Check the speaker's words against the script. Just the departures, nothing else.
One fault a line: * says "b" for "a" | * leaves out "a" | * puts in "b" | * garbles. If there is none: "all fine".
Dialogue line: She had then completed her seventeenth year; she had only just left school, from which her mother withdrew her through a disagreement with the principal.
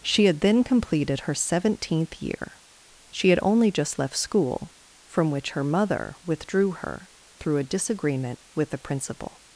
all fine